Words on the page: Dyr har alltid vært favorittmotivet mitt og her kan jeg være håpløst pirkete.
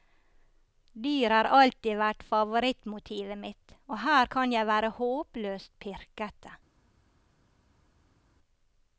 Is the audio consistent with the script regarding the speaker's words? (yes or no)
yes